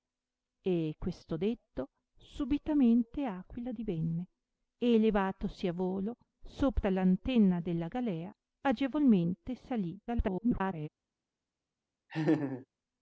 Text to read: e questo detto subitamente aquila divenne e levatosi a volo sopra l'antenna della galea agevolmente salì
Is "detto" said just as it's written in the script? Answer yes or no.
yes